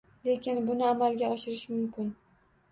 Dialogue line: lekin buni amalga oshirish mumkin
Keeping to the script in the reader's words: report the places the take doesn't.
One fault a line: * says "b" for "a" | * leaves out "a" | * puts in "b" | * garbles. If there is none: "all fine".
all fine